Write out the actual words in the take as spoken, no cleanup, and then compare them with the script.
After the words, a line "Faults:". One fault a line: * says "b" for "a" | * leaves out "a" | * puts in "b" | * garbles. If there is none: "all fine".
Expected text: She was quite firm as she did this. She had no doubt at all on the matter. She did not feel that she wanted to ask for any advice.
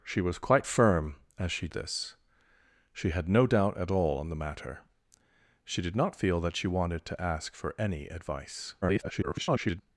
She was quite firm as she this. She had no doubt at all on the matter. She did not feel that she wanted to ask for any advice. [garbled]
Faults:
* leaves out "did"
* garbles